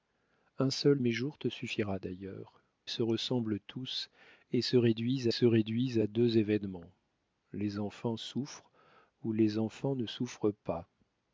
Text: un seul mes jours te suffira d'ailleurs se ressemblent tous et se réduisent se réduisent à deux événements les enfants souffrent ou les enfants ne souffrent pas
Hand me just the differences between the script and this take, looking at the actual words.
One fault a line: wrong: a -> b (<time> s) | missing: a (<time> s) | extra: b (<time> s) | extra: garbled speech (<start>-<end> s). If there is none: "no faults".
no faults